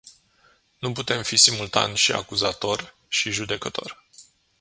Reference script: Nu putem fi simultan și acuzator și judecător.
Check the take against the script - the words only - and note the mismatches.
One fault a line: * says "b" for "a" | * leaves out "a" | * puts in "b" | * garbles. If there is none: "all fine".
all fine